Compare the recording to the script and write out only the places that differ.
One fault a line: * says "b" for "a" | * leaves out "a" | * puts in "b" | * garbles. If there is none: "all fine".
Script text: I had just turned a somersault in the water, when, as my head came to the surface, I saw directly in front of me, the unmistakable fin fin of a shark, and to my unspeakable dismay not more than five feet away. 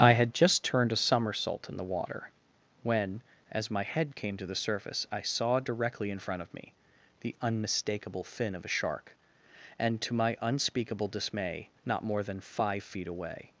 * leaves out "fin"